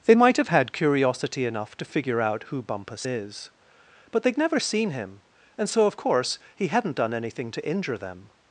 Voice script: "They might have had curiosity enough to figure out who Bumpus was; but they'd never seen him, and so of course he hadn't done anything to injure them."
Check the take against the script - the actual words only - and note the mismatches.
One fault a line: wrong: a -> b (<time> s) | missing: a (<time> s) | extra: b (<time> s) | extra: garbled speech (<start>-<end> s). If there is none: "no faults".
wrong: was -> is (3.0 s)